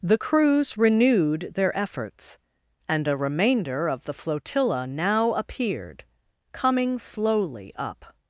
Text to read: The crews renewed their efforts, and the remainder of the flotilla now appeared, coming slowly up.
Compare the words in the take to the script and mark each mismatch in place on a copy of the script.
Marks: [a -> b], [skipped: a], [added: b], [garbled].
The crews renewed their efforts, and [the -> a] remainder of the flotilla now appeared, coming slowly up.